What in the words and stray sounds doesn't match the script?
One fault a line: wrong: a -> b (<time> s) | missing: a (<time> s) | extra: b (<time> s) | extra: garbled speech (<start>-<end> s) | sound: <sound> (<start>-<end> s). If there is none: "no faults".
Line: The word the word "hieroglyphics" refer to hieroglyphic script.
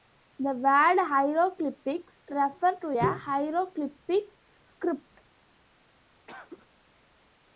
missing: the word (1.0 s)
extra: a (3.0 s)
sound: cough (6.3-6.7 s)